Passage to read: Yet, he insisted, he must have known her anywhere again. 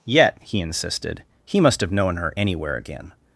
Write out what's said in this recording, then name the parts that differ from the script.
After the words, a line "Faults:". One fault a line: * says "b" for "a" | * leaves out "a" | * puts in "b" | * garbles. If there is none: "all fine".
Yet, he insisted, he must have known her anywhere again.
Faults:
all fine